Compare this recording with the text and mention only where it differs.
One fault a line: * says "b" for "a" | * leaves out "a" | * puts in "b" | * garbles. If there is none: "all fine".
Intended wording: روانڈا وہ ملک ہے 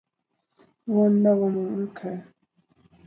all fine